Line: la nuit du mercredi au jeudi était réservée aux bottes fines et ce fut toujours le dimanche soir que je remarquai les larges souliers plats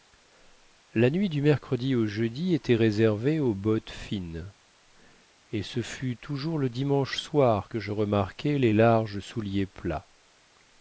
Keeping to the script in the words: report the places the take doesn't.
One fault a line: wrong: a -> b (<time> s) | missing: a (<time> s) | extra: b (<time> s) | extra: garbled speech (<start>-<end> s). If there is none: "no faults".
no faults